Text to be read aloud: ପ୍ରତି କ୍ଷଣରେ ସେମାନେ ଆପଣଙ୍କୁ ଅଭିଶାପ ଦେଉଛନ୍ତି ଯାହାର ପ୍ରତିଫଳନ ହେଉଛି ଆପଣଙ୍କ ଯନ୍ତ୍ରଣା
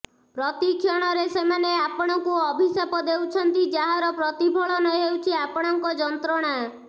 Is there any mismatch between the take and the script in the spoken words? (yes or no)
no